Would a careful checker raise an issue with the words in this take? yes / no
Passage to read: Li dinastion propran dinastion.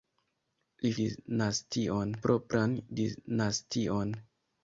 no